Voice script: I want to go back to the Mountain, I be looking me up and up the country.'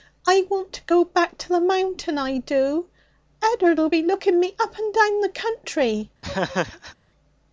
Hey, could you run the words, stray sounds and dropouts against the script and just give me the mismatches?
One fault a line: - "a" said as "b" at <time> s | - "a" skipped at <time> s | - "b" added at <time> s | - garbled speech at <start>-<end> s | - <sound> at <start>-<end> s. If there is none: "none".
- "do Ed'ard'll" added at 2.4 s
- "up" said as "down" at 4.9 s
- laugh at 6.2-7.0 s